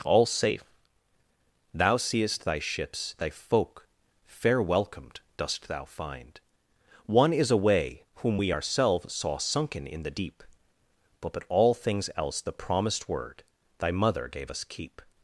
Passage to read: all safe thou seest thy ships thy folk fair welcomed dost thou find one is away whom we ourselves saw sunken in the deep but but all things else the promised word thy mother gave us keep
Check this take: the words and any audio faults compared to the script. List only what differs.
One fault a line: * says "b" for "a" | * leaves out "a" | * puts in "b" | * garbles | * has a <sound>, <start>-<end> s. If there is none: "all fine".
all fine